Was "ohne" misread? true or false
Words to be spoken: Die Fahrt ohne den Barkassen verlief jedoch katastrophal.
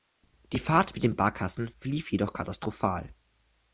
true